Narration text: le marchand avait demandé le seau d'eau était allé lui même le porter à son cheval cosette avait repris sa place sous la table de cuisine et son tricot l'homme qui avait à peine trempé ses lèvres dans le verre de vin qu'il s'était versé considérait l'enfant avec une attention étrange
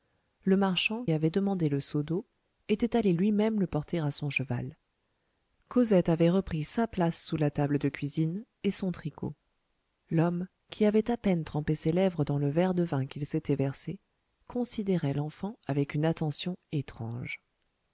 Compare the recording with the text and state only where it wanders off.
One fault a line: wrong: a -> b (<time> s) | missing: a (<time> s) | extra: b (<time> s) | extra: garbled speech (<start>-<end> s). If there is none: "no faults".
no faults